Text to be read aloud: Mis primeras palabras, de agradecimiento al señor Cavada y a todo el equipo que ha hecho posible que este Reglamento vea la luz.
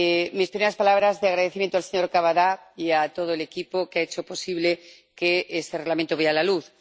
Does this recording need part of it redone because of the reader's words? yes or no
no